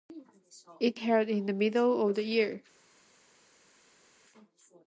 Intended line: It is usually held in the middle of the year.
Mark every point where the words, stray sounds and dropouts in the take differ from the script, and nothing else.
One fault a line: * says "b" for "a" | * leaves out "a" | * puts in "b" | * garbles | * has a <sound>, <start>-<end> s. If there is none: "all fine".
* leaves out "is usually"